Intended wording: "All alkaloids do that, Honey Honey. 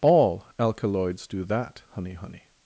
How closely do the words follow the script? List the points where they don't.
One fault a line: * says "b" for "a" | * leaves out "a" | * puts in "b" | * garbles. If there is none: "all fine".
all fine